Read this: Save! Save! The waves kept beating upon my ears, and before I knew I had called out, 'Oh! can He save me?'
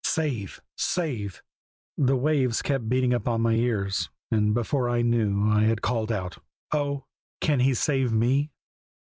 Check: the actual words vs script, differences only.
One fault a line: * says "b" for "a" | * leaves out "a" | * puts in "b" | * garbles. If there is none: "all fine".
all fine